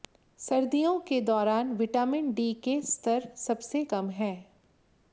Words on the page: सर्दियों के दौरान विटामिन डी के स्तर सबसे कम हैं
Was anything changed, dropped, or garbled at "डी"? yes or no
no